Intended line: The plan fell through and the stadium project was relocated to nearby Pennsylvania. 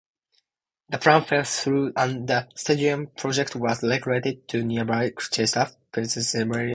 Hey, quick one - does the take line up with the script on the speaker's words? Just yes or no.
no